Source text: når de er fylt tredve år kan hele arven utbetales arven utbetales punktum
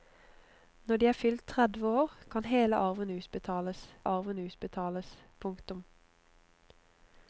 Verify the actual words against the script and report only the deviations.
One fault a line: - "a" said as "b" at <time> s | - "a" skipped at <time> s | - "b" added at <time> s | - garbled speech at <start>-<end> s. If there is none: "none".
none